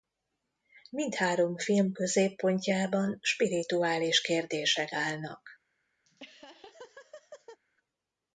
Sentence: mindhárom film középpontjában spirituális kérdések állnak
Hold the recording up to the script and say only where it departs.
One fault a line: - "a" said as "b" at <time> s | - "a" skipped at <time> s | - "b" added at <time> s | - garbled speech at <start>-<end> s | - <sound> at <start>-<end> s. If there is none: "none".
- laugh at 6.1-7.6 s